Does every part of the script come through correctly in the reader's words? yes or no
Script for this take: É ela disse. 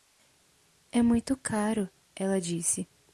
no